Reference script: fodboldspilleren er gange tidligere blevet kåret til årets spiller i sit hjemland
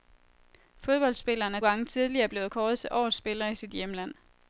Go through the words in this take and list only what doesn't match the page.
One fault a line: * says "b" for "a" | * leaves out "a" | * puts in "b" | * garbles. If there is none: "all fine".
all fine